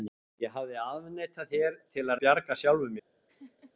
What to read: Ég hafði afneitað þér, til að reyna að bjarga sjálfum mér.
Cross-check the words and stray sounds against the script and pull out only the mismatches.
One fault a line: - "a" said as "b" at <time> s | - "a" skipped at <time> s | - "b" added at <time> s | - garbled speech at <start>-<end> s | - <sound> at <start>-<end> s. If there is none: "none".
- "reyna" skipped at 2.2 s
- laugh at 3.3-3.7 s